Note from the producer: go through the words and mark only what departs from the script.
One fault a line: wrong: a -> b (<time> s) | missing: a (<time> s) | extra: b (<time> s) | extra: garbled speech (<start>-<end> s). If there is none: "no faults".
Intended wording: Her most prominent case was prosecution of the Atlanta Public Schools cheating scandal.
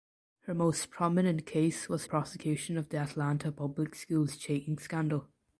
no faults